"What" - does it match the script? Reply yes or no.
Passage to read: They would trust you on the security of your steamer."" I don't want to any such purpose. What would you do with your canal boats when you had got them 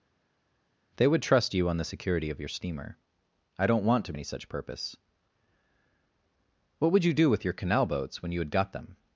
yes